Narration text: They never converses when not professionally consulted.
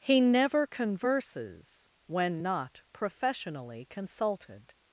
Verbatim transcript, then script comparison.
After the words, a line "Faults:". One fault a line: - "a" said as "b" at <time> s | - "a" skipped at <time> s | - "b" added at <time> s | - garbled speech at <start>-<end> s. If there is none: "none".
He never converses when not professionally consulted.
Faults:
- "They" said as "He" at 0.0 s